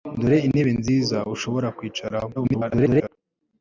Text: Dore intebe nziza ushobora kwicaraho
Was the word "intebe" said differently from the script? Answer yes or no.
no